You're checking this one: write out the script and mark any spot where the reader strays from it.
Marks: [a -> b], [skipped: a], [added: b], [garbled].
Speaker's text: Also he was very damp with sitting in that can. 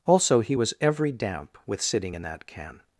Also he was [very -> every] damp with sitting in that can.